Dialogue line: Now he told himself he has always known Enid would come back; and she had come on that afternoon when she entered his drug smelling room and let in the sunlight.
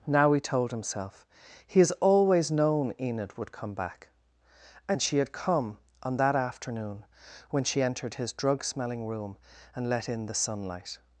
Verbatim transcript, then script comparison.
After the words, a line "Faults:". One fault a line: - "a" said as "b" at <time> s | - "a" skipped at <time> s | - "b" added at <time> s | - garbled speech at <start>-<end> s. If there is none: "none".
Now he told himself he has always known Enid would come back; and she had come on that afternoon when she entered his drug smelling room and let in the sunlight.
Faults:
none